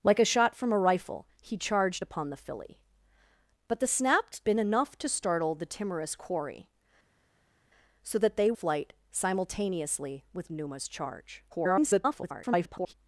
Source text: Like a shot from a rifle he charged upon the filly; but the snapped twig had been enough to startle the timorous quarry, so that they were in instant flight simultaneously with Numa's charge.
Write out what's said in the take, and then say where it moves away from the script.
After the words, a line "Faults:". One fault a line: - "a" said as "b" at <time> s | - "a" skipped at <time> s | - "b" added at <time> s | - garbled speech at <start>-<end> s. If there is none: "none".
Like a shot from a rifle he charged upon the filly; but the snapped been enough to startle the timorous quarry, so that they flight simultaneously with Numa's charge. [garbled]
Faults:
- "twig had" skipped at 4.4 s
- "were in instant" skipped at 8.5 s
- garbled speech at 11.5-12.9 s